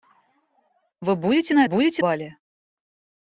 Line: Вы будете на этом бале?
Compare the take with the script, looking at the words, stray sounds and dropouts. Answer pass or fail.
fail